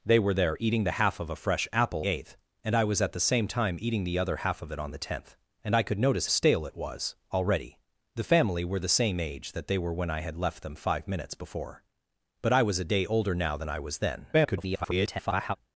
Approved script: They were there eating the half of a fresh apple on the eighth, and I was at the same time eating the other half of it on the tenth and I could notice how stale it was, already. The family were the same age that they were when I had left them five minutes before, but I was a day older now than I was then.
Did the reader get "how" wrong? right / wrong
wrong